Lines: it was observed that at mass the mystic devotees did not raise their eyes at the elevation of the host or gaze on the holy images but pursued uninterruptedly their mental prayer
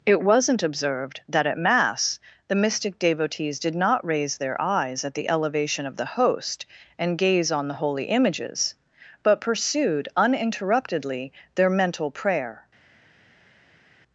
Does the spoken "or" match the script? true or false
false